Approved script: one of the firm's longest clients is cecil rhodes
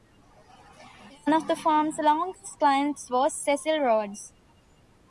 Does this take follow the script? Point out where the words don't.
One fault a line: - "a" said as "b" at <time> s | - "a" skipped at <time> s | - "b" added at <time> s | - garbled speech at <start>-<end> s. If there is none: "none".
- "is" said as "was" at 3.1 s